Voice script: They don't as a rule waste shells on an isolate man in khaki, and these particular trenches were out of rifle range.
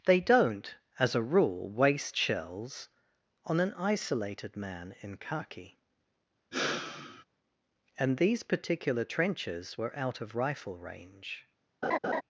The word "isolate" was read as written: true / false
false